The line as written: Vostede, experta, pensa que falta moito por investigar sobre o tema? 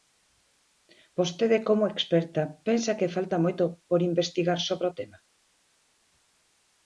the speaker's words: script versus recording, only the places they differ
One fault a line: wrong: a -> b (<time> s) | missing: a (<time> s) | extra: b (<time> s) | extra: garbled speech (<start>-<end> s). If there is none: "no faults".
extra: como (1.7 s)